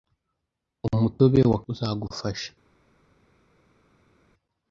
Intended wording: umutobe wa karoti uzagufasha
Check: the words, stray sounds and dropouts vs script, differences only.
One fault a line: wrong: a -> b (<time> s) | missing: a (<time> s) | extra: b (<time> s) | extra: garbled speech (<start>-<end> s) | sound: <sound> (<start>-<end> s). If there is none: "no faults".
missing: karoti (1.6 s)